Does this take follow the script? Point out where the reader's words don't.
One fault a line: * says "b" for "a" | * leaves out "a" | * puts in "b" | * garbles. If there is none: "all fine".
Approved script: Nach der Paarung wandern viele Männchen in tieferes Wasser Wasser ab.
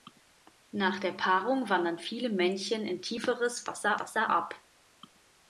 all fine